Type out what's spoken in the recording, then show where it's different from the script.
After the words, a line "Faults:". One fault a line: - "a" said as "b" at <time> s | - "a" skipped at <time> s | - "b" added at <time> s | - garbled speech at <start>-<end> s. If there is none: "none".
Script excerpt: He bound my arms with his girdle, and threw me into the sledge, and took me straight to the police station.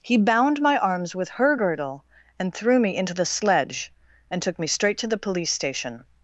He bound my arms with her girdle, and threw me into the sledge, and took me straight to the police station.
Faults:
- "his" said as "her" at 1.3 s